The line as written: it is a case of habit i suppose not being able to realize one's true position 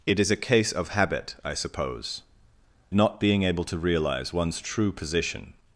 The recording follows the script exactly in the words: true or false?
true